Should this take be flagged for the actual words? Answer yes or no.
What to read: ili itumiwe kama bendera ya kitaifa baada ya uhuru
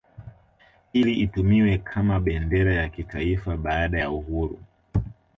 no